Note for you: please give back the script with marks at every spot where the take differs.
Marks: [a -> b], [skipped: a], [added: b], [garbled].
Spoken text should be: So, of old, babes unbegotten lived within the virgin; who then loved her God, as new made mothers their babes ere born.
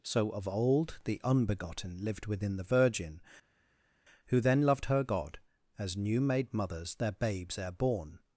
So, of old, [babes -> the] unbegotten lived within the virgin; who then loved her God, as new made mothers their babes ere born.